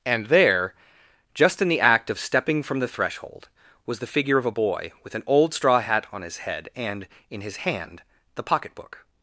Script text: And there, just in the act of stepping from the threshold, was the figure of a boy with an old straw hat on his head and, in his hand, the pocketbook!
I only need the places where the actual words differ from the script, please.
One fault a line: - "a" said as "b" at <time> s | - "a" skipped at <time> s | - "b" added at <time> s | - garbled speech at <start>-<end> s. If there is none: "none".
none